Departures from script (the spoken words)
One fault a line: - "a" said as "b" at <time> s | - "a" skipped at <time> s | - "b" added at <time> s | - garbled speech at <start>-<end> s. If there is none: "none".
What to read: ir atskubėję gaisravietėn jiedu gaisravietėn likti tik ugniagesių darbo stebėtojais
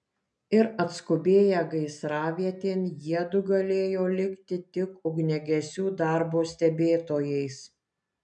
- "gaisravietėn" said as "galėjo" at 3.5 s